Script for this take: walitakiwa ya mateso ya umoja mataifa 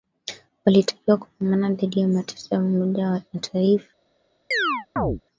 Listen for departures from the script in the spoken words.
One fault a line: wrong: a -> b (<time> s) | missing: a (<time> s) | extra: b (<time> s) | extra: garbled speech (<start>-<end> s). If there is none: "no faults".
extra: kupambana dhidi (1.2 s)
extra: wa (3.1 s)